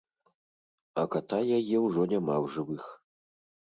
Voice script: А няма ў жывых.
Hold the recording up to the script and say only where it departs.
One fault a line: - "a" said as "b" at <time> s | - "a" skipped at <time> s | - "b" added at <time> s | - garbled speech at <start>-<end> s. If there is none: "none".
- "ката яе ўжо" added at 1.2 s